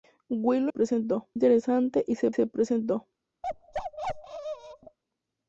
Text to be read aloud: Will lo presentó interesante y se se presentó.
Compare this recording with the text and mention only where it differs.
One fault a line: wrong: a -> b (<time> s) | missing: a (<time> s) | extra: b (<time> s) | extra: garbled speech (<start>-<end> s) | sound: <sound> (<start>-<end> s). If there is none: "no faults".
sound: bark (3.4-5.0 s)